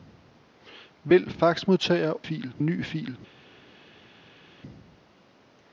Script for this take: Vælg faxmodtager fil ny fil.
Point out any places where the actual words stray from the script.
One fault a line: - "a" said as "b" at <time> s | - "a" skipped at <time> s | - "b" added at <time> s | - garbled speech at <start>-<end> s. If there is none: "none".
none